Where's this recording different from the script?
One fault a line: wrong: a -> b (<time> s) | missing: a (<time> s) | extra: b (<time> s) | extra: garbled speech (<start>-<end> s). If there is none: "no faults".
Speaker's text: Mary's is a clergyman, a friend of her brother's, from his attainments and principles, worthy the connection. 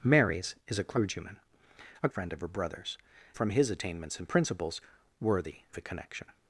no faults